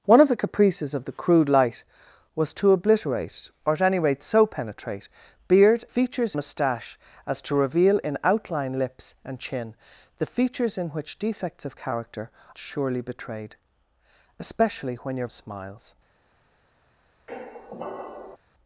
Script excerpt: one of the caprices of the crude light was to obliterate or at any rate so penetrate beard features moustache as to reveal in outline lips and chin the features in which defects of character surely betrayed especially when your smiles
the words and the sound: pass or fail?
fail